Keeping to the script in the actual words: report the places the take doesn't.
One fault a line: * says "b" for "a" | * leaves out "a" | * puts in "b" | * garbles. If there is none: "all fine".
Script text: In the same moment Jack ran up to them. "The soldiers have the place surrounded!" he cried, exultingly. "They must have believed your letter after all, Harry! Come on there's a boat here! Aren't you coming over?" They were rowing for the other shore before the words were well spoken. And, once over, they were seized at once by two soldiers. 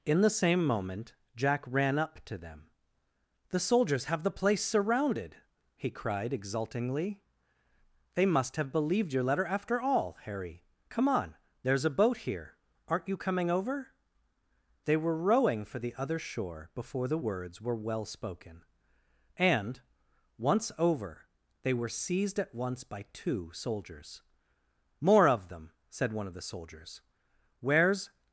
* puts in "More of them said one of the soldiers Where's"